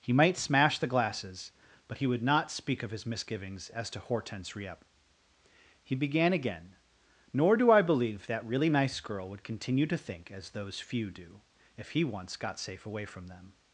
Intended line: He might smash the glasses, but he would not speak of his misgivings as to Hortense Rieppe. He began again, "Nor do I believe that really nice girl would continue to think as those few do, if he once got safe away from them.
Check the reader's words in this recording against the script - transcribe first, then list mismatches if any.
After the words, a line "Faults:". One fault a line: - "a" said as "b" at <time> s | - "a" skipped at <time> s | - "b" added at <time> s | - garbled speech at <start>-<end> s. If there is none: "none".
He might smash the glasses, but he would not speak of his misgivings as to Hortense Rieppe. He began again, "Nor do I believe that really nice girl would continue to think as those few do, if he once got safe away from them.
Faults:
none